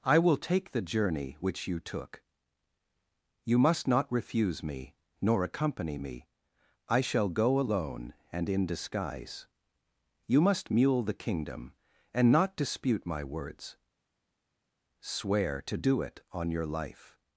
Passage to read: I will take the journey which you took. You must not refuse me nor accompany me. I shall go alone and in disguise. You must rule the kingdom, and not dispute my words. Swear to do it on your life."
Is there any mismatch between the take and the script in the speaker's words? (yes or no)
yes